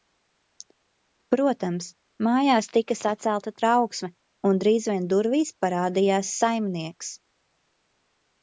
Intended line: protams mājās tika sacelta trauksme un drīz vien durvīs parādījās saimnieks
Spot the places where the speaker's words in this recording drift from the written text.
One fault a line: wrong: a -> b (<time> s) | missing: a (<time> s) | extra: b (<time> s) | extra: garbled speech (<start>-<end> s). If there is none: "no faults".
no faults